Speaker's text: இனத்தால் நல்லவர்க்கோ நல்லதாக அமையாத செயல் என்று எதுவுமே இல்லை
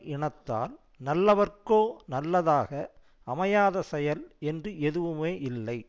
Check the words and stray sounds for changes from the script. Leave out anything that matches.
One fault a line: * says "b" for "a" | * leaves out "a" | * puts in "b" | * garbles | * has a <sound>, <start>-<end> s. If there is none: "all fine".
all fine